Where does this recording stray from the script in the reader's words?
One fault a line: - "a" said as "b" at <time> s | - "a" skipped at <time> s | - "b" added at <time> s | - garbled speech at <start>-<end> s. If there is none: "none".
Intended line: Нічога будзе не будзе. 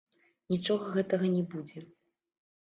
- "будзе" said as "гэтага" at 1.0 s